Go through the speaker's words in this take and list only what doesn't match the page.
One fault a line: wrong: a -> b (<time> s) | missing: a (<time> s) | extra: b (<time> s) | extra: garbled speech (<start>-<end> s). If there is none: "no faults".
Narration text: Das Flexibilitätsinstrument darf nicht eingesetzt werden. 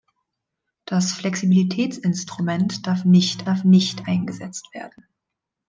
extra: darf nicht (3.5 s)